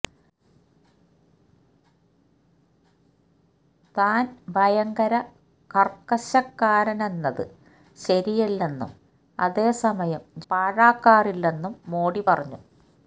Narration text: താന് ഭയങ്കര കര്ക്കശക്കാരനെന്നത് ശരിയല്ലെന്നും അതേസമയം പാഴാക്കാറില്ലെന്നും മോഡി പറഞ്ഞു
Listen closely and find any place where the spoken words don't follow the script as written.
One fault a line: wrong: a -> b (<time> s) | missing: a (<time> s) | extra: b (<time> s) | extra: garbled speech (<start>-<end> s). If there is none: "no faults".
no faults